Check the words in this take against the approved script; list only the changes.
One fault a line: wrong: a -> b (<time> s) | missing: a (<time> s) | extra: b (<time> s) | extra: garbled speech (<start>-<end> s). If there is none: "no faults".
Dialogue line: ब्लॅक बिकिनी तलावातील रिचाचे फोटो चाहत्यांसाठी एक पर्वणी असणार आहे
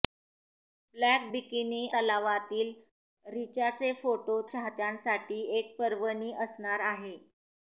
no faults